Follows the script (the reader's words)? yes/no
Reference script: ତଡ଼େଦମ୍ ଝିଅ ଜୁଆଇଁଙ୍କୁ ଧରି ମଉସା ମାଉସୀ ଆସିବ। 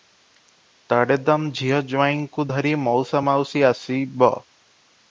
yes